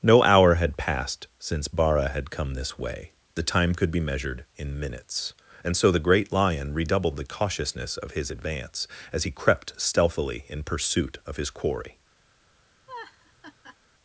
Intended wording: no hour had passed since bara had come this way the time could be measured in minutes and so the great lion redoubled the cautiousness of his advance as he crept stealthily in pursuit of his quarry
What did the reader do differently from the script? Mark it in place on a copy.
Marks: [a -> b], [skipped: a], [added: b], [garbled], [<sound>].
no hour had passed since bara had come this way the time could be measured in minutes and so the great lion redoubled the cautiousness of his advance as he crept stealthily in pursuit of his quarry [laugh]